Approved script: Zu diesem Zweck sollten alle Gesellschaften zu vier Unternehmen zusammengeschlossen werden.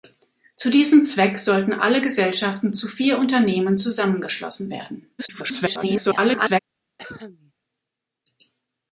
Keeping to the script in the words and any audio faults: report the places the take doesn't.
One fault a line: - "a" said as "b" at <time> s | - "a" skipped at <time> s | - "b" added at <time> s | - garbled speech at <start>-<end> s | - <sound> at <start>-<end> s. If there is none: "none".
- garbled speech at 5.2-6.6 s
- cough at 7.0-7.5 s